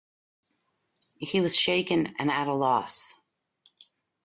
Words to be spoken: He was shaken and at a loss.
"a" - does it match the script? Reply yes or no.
yes